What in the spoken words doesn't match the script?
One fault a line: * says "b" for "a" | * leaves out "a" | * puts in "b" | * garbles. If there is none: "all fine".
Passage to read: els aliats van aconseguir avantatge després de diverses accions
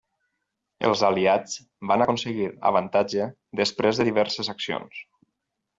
all fine